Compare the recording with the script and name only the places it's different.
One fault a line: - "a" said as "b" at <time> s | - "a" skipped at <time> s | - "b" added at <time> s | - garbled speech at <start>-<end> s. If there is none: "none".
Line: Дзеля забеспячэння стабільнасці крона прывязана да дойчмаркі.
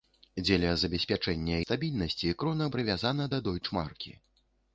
none